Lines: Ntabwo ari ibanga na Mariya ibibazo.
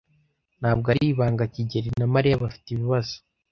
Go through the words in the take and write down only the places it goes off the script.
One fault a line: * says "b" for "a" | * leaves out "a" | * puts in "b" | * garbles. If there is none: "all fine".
* puts in "kigeli"
* puts in "bafite"